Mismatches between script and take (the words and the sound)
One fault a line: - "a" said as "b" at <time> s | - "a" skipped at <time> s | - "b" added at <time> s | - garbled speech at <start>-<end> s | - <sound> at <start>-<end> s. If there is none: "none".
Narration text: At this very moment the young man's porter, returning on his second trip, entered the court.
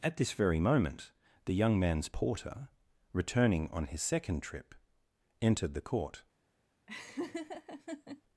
- laugh at 6.9-8.2 s